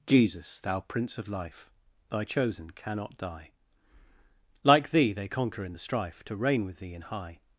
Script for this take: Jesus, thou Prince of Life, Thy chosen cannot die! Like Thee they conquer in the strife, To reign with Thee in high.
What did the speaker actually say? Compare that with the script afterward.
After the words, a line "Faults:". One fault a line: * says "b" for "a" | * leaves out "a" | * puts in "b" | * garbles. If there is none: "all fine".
Jesus, thou Prince of Life, Thy chosen cannot die! Like Thee they conquer in the strife, To reign with Thee in high.
Faults:
all fine